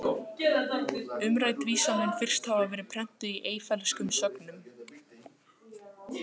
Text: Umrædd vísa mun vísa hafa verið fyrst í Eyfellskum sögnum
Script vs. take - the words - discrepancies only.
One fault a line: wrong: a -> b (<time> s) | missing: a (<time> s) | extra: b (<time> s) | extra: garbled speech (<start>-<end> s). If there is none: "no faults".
wrong: vísa -> fyrst (2.2 s)
wrong: fyrst -> prentuð (3.0 s)